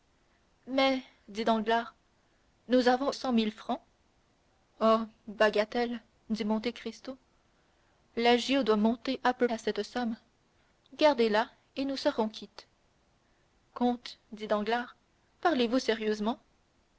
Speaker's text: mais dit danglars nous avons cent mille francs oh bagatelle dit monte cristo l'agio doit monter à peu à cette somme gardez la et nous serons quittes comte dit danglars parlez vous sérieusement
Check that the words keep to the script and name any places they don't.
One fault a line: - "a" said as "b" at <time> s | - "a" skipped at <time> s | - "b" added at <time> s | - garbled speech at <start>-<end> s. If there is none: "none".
none